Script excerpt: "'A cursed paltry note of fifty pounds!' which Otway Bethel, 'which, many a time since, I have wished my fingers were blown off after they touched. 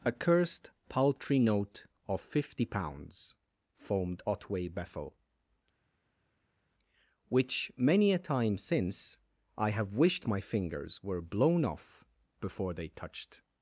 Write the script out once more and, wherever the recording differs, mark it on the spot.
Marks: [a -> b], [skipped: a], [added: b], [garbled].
"'A cursed paltry note of fifty pounds!' [which -> foamed] Otway Bethel, 'which, many a time since, I have wished my fingers were blown off [after -> before] they touched.